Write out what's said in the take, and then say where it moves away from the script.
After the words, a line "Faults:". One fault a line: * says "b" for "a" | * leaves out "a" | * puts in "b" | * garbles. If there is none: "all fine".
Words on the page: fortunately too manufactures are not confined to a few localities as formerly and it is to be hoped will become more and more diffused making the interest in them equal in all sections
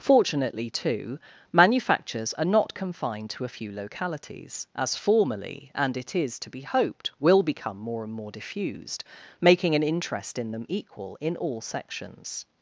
fortunately too manufactures are not confined to a few localities as formerly and it is to be hoped will become more and more diffused making an interest in them equal in all sections
Faults:
* says "an" for "the"